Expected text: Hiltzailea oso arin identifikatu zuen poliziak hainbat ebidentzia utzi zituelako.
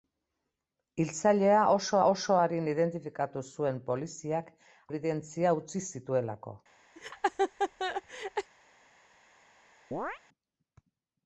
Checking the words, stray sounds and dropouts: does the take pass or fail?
fail